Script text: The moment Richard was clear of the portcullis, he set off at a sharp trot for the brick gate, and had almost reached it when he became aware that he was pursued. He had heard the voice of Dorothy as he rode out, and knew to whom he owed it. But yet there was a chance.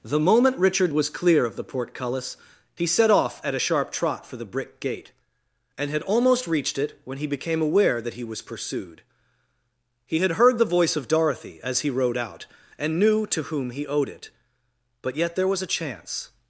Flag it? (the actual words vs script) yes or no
no